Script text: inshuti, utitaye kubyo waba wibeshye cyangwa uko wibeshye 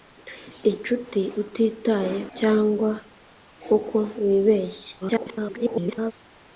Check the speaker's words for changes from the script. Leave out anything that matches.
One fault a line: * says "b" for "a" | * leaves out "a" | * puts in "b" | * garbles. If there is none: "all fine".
* leaves out "kubyo waba wibeshye"
* garbles